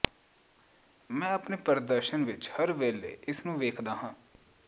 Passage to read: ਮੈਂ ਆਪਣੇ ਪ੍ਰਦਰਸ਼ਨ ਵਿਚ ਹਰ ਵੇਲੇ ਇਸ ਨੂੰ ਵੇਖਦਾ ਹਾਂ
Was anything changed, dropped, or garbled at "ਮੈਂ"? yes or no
no